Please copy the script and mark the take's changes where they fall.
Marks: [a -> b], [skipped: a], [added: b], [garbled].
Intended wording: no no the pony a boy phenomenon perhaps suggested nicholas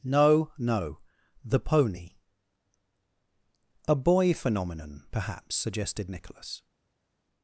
no no the pony a boy phenomenon perhaps suggested nicholas